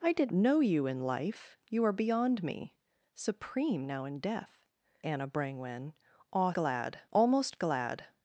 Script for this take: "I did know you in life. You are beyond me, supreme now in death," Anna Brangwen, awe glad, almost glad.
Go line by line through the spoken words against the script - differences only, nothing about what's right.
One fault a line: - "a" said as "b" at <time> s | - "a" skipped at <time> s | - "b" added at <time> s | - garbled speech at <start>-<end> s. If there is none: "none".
none